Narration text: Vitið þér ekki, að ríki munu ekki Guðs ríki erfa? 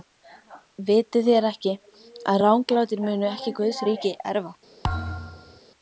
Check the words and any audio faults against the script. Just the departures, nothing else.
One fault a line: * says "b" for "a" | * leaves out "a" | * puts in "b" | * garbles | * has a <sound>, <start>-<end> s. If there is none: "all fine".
* says "ranglátir" for "ríki"
* has a thud, 4.8-5.6 s